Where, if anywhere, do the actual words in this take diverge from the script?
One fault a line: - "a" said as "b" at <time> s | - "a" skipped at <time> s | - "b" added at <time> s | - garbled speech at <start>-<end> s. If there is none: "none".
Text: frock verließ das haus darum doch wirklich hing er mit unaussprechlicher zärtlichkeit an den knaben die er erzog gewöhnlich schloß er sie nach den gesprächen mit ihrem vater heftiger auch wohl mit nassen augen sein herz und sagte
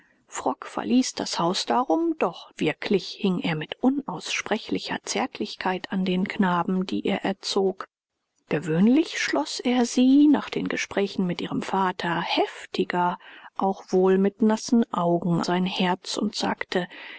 none